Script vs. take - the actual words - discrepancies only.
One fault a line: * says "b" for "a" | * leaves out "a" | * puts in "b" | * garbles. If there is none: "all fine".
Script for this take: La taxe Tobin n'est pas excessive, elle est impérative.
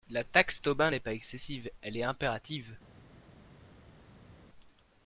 all fine